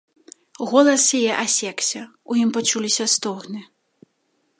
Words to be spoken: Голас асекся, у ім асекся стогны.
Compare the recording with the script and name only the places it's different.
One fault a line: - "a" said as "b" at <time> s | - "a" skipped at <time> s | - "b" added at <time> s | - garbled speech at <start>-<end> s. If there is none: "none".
- "яе" added at 1.2 s
- "асекся" said as "пачуліся" at 2.5 s